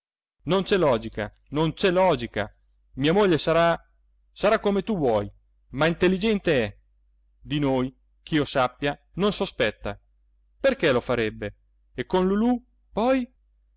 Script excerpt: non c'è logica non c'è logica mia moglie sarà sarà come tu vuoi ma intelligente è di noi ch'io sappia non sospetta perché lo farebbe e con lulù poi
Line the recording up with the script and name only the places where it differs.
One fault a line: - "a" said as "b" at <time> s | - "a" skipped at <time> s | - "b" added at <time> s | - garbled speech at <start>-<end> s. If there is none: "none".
none